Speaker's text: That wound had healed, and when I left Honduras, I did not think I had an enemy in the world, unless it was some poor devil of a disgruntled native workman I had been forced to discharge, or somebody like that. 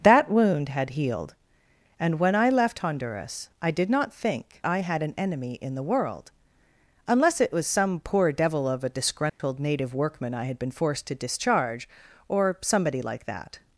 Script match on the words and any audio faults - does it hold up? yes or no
no